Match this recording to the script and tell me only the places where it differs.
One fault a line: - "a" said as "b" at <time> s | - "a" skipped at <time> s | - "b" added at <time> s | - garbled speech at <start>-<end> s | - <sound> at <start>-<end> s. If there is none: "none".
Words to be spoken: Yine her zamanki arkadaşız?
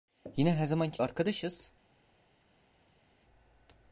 none